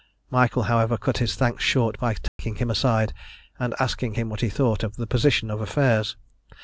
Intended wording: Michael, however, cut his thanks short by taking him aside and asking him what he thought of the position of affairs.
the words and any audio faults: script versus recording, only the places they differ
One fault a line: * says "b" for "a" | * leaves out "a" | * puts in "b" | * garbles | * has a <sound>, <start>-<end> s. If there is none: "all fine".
* has a dropout, 2.3-2.4 s